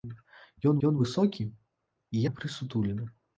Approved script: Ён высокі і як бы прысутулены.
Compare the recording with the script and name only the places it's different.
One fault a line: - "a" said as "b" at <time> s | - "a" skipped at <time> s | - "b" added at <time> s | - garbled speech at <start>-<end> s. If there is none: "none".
- "ён" added at 0.9 s
- "як" skipped at 2.2 s